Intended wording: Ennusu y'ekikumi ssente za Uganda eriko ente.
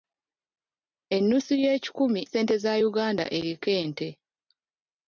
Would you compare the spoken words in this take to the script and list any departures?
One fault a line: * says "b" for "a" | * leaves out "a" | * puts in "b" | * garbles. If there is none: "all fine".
all fine